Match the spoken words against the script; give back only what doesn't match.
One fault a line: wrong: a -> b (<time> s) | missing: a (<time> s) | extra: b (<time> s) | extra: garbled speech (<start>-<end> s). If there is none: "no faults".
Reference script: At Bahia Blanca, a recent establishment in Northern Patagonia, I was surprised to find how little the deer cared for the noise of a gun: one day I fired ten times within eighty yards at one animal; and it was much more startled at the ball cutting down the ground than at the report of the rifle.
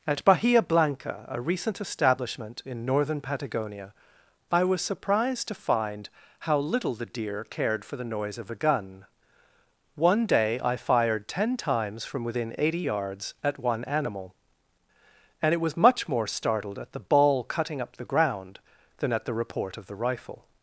extra: from (12.0 s)
wrong: down -> up (17.8 s)